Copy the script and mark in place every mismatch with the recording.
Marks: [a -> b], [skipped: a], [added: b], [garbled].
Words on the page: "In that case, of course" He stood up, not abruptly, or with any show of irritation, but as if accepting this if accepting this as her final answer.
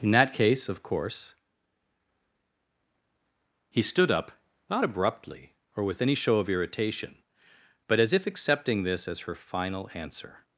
"In that case, of course" He stood up, not abruptly, or with any show of irritation, but as if accepting this [skipped: if accepting this] as her final answer.